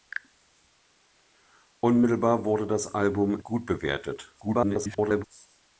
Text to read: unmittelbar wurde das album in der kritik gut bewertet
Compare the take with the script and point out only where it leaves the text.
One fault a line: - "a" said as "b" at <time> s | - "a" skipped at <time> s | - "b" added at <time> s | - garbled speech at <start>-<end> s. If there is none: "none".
- "in der kritik" skipped at 3.4 s
- garbled speech at 4.4-5.2 s